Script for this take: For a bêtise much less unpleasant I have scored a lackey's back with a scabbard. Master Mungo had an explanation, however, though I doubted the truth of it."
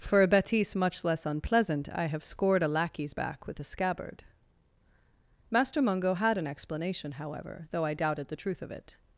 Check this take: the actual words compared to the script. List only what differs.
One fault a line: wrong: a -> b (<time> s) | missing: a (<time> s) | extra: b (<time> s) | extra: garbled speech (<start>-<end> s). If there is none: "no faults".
no faults